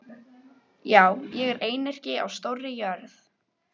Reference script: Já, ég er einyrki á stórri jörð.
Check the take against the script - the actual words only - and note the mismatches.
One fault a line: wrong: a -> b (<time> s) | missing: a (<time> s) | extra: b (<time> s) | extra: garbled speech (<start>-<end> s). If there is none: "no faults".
no faults